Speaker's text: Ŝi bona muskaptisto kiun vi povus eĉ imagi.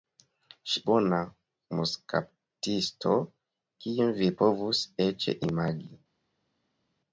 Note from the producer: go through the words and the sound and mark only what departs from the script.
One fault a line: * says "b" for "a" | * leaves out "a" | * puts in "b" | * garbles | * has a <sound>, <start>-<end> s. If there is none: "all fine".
all fine